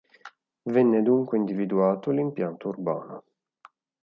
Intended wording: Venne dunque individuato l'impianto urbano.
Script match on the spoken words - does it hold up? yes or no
yes